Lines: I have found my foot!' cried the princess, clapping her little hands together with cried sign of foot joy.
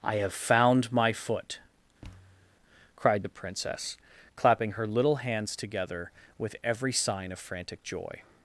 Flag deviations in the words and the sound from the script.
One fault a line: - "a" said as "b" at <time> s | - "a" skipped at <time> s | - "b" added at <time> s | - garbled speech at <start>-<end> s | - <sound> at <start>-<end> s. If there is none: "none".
- thud at 2.0-2.6 s
- "cried" said as "every" at 6.6 s
- "foot" said as "frantic" at 7.4 s